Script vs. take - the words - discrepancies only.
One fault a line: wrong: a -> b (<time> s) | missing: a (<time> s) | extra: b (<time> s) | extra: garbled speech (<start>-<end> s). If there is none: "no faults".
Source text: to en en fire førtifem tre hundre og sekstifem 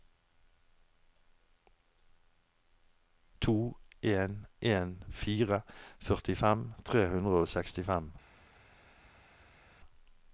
no faults